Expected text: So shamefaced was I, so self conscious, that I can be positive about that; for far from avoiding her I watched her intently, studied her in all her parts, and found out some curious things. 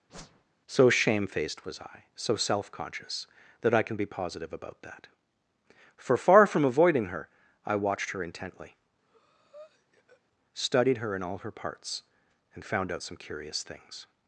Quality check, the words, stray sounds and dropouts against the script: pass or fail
fail